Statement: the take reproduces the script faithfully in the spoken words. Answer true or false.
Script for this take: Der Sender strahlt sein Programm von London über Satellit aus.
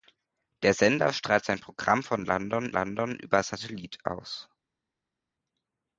false